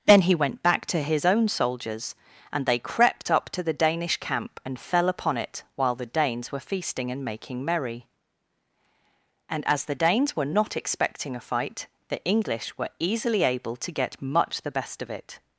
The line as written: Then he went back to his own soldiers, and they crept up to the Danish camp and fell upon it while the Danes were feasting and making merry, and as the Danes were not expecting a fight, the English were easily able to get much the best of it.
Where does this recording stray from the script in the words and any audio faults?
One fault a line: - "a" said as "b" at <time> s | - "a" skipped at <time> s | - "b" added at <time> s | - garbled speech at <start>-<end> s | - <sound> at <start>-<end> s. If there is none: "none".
none